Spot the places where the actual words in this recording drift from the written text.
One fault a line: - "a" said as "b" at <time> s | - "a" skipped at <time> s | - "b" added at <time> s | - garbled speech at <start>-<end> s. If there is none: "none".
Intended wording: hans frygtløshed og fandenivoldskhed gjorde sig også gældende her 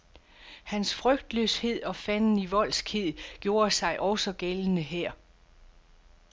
none